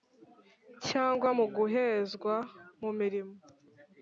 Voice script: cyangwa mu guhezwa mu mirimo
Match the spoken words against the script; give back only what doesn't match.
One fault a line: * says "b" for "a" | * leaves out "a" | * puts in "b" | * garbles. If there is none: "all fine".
all fine